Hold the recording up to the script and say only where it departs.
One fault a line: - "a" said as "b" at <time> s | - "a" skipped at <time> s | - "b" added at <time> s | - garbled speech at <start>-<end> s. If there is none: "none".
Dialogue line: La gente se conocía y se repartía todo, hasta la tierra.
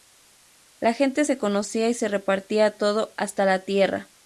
none